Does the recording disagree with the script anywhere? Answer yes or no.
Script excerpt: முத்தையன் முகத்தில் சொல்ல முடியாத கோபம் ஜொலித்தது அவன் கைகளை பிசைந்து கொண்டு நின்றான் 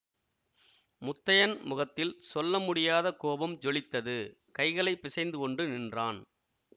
yes